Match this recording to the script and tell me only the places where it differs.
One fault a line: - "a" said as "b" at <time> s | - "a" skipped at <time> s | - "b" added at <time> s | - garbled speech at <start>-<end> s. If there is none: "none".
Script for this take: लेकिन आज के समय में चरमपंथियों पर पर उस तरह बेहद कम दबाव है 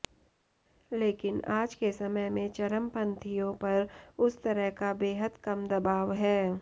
- "पर" skipped at 3.9 s
- "का" added at 4.8 s